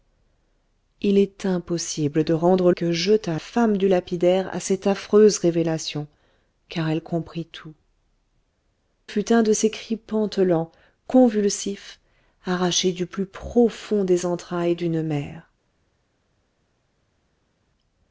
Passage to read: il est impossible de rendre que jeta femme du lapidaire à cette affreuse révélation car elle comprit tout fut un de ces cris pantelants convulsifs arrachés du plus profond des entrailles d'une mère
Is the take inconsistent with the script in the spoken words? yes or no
no